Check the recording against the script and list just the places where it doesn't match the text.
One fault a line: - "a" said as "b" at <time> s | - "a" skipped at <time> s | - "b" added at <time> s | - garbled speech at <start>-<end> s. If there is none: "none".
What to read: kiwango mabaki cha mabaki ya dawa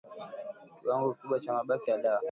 - "mabaki" said as "kikubwa" at 1.1 s